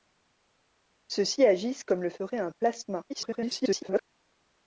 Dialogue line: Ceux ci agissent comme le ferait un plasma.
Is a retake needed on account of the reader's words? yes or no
yes